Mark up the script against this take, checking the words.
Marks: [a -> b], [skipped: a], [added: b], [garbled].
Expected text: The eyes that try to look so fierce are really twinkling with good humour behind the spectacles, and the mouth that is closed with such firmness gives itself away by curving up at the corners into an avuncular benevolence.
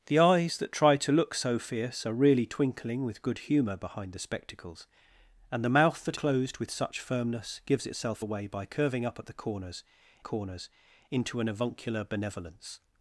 The eyes that try to look so fierce are really twinkling with good humour behind the spectacles, and the mouth that [skipped: is] closed with such firmness gives itself away by curving up at the corners [added: corners] into an avuncular benevolence.